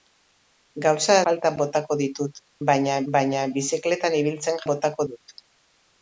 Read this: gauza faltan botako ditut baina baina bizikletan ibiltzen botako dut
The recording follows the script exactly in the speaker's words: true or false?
true